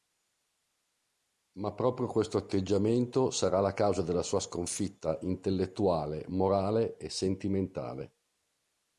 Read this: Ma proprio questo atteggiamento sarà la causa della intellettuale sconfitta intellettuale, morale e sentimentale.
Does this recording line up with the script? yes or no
no